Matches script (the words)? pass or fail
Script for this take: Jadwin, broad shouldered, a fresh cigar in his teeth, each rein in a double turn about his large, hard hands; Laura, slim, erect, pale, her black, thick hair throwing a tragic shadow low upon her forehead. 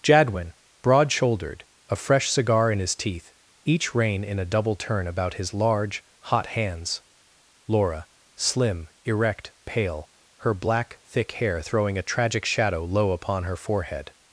fail